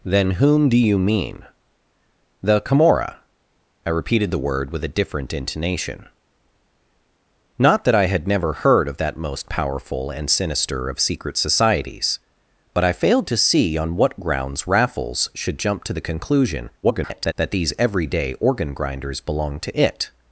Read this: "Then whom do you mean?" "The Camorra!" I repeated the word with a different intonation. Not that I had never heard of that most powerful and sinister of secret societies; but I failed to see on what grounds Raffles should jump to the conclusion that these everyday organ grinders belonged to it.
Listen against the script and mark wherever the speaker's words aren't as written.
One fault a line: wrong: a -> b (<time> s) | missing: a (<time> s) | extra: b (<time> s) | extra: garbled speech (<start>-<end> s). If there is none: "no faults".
extra: garbled speech (16.8-17.3 s)